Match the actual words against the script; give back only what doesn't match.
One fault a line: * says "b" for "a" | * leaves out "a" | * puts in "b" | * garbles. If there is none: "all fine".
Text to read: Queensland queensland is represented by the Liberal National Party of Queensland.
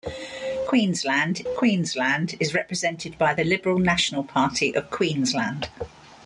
all fine